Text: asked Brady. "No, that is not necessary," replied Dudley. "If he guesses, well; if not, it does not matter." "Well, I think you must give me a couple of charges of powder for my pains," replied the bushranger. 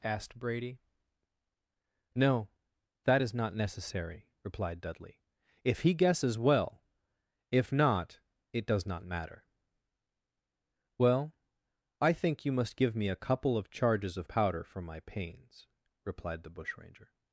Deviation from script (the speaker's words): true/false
false